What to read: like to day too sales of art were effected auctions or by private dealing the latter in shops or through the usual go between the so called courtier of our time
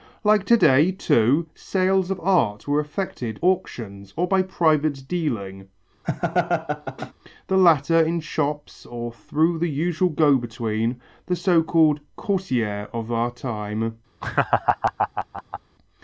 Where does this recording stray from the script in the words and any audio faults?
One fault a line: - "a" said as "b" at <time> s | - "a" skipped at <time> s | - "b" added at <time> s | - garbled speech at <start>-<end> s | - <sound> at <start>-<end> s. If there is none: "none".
- laugh at 6.0-7.1 s
- laugh at 14.2-15.6 s